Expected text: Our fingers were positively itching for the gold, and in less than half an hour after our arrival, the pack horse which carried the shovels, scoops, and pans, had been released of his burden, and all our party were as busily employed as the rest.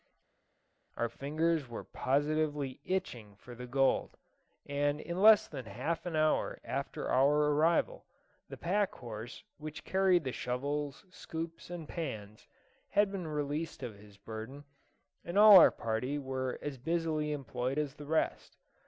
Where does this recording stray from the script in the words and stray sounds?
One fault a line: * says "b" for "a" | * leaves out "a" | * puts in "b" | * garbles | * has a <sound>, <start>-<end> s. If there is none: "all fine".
all fine